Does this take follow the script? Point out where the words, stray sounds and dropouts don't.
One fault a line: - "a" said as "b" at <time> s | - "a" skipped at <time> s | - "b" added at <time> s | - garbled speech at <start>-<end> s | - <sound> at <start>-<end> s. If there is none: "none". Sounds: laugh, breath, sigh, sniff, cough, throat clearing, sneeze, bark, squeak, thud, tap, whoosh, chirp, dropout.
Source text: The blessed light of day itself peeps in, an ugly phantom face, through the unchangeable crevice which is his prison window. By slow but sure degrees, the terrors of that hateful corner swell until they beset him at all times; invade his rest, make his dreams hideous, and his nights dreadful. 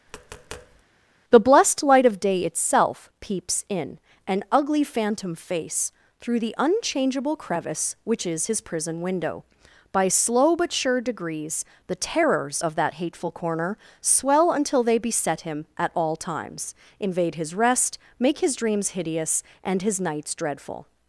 - tap at 0.1-0.8 s